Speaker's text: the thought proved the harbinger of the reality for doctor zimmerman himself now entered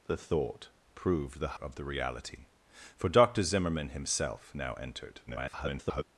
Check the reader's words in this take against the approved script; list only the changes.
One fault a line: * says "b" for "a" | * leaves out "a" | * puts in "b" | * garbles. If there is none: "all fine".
* leaves out "harbinger"
* garbles